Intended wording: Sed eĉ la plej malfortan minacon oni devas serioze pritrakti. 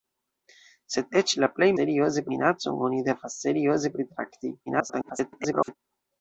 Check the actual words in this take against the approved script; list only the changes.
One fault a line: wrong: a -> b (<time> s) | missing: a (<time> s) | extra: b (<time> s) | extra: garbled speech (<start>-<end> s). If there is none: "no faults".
wrong: malfortan -> serioze (1.8 s)
extra: garbled speech (4.7-5.8 s)